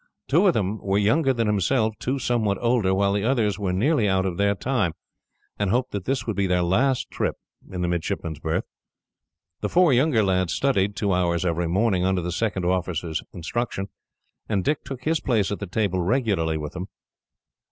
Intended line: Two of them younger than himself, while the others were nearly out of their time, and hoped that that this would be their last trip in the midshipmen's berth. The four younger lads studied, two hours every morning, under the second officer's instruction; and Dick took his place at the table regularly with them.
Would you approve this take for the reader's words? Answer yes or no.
no